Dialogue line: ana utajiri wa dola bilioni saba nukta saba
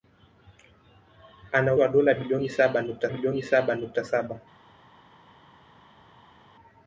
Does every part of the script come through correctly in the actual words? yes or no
no